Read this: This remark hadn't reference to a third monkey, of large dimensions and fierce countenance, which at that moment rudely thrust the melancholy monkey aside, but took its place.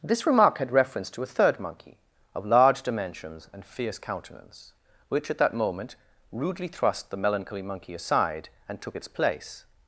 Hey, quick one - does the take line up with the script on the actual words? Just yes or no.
no